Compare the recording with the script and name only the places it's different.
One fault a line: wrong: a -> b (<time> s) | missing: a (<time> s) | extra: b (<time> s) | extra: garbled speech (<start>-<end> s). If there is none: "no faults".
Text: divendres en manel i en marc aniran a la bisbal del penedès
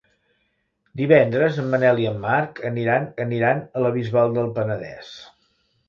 extra: aniran (3.2 s)